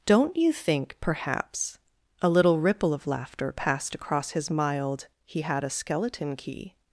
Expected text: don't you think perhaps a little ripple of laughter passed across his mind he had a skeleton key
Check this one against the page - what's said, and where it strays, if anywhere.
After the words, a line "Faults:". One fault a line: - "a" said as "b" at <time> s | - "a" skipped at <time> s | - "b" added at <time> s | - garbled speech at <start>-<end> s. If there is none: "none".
don't you think perhaps a little ripple of laughter passed across his mild he had a skeleton key
Faults:
- "mind" said as "mild" at 4.5 s